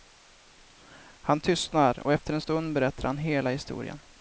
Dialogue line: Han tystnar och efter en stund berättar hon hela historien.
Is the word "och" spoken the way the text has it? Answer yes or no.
yes